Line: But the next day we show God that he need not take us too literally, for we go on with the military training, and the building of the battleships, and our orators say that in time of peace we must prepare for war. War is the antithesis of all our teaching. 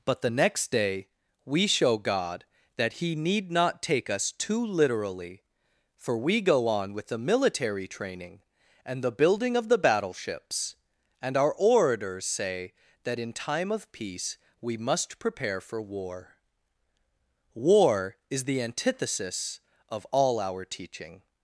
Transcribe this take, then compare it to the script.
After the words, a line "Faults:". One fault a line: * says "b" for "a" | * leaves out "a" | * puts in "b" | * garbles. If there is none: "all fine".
But the next day we show God that he need not take us too literally, for we go on with the military training, and the building of the battleships, and our orators say that in time of peace we must prepare for war. War is the antithesis of all our teaching.
Faults:
all fine